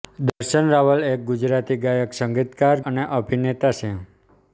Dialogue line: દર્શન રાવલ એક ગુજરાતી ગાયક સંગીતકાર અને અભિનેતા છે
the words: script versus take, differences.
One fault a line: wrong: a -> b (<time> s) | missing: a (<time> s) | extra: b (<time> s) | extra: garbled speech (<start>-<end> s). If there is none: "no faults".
no faults